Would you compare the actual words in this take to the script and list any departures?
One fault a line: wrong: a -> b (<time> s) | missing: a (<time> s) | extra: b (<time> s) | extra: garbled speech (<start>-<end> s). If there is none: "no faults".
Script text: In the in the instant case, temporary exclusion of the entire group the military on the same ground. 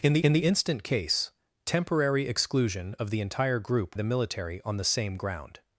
no faults